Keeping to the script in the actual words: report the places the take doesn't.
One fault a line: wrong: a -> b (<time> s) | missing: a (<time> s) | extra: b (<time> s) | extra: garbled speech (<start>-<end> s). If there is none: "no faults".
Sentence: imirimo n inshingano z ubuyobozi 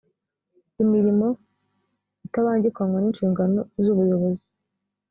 extra: itabangikanywa (2.2 s)